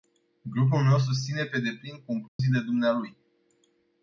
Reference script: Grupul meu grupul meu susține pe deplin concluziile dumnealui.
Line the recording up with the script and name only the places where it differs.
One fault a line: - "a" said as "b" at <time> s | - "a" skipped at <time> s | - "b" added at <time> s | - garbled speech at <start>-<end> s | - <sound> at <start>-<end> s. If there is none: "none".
- "grupul meu" skipped at 1.0 s
- dropout at 2.3-2.4 s